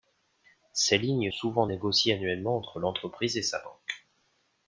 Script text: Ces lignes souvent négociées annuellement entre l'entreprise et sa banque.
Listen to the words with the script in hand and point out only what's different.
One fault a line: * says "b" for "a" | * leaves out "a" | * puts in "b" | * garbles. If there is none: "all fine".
all fine